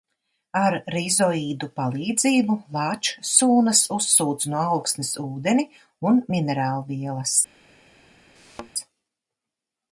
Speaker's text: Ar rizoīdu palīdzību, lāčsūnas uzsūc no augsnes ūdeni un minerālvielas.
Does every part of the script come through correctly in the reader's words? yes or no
yes